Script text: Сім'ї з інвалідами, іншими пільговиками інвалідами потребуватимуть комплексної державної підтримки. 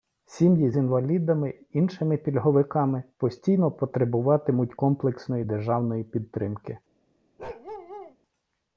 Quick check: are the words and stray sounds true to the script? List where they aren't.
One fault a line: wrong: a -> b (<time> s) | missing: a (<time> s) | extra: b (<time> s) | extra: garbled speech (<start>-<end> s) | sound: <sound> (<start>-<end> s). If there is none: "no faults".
wrong: інвалідами -> постійно (3.2 s)
sound: bark (7.4-8.2 s)